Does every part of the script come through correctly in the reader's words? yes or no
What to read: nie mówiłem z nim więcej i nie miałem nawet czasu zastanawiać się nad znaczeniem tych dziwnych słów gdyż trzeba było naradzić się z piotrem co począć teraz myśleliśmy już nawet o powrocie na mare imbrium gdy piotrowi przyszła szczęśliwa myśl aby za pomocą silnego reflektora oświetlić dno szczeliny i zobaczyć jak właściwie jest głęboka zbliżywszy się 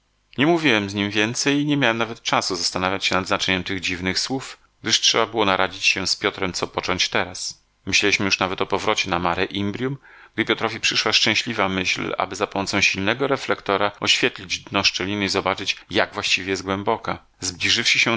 yes